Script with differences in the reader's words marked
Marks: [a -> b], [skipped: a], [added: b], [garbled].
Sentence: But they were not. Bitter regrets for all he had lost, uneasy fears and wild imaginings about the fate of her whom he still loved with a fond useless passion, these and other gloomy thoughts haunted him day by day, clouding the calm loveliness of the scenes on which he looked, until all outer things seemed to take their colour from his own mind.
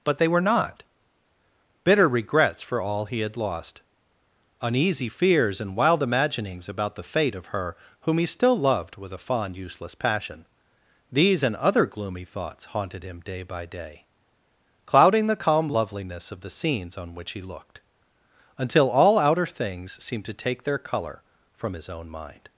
But they were not. Bitter regrets for all he had lost, uneasy fears and wild imaginings about the fate of her whom he still loved with a fond useless passion, these and other gloomy thoughts haunted him day by day, clouding the calm loveliness of the scenes on which he looked, until all outer things seemed to take their colour from his own mind.